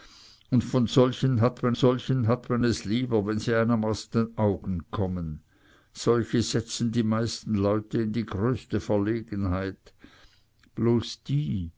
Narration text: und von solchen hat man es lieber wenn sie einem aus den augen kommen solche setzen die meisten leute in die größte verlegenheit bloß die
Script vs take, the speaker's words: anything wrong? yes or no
yes